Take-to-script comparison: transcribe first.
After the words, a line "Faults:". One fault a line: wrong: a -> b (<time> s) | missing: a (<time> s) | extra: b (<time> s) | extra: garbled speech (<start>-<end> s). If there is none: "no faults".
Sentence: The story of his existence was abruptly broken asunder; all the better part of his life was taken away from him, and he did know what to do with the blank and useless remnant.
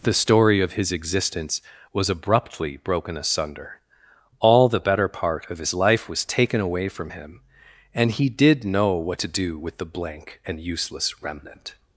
The story of his existence was abruptly broken asunder; all the better part of his life was taken away from him, and he did know what to do with the blank and useless remnant.
Faults:
no faults